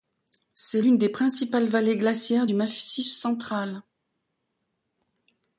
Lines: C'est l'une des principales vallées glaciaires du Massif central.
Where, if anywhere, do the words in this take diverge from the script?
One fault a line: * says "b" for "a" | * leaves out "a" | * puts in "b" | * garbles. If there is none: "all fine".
all fine